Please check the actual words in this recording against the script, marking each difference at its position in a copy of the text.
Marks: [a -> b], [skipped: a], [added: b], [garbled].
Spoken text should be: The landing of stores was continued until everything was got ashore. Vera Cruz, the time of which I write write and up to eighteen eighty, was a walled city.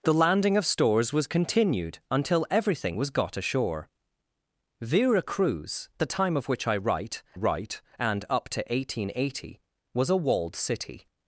The landing of stores was continued until everything was got ashore. Vera Cruz, the time of which I write write and up to eighteen eighty, was a walled city.